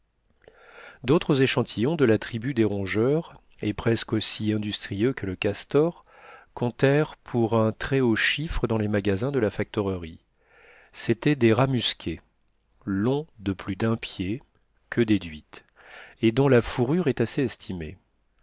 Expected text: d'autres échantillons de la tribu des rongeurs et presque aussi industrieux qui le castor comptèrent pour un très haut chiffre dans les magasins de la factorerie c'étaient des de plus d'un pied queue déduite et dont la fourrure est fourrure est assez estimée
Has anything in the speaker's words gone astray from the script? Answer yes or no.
yes